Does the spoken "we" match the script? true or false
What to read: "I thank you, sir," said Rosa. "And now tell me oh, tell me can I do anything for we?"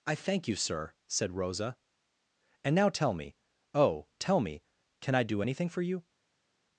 false